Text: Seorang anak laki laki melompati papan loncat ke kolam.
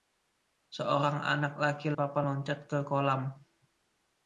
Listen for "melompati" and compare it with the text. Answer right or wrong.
wrong